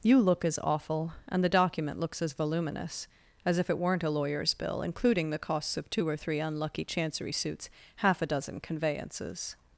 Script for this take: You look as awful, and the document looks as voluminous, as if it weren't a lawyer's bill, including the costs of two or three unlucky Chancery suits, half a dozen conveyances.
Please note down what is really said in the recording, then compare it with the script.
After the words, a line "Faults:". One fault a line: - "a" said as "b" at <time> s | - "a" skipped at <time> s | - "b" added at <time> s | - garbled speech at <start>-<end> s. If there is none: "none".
You look as awful, and the document looks as voluminous, as if it weren't a lawyer's bill, including the costs of two or three unlucky Chancery suits, half a dozen conveyances.
Faults:
none